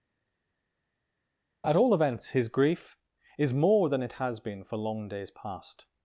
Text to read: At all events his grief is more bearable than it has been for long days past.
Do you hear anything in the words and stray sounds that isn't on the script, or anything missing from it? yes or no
yes